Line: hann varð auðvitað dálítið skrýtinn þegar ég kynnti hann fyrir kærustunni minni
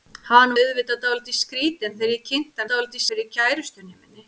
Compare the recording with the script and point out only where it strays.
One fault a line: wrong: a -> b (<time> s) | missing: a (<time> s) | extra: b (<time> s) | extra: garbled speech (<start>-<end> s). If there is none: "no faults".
missing: varð (0.5 s)
wrong: hann -> dálítið (2.7 s)